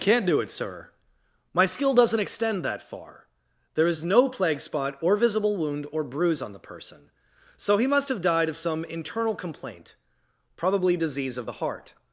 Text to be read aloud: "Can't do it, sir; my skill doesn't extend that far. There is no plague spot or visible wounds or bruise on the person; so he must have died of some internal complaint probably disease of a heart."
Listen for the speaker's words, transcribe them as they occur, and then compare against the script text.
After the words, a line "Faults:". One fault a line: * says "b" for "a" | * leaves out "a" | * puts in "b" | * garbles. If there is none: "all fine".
"Can't do it, sir; my skill doesn't extend that far. There is no plague spot or visible wound or bruise on the person; so he must have died of some internal complaint probably disease of the heart."
Faults:
* says "wound" for "wounds"
* says "the" for "a"